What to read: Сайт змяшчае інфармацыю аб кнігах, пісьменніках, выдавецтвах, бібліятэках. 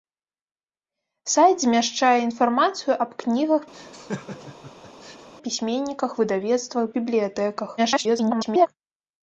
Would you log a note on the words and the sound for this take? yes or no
yes